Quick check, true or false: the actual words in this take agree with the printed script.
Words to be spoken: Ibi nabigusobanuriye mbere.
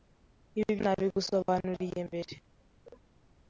true